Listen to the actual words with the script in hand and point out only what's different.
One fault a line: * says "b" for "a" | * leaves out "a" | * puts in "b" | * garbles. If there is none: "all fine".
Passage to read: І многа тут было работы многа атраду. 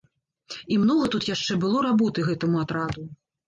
* puts in "яшчэ"
* says "гэтаму" for "многа"